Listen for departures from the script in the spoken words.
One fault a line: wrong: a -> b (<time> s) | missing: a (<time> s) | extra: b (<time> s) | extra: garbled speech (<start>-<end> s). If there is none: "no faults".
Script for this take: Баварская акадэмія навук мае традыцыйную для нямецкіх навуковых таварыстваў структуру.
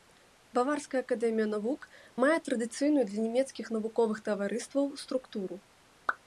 no faults